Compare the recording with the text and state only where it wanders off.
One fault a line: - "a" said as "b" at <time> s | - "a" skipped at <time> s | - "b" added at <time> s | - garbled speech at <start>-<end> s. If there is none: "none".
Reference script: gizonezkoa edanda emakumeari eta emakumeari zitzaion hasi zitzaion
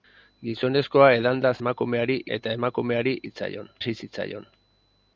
none